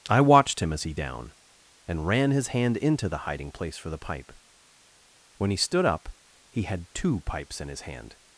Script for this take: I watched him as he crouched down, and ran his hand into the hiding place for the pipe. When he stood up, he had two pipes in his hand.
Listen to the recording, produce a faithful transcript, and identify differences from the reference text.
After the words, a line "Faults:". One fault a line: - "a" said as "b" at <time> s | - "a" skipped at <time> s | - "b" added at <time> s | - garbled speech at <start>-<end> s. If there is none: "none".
I watched him as he down, and ran his hand into the hiding place for the pipe. When he stood up, he had two pipes in his hand.
Faults:
- "crouched" skipped at 0.9 s